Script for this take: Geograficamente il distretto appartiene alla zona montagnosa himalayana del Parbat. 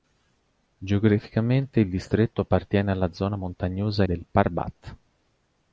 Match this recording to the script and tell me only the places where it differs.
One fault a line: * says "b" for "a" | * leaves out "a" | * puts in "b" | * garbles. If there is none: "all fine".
* leaves out "himalayana"